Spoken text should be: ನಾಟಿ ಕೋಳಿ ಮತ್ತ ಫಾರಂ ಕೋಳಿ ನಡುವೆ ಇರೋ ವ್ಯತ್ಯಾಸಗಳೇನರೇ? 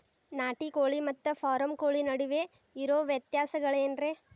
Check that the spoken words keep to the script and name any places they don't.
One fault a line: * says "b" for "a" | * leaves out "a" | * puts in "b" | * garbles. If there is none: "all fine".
all fine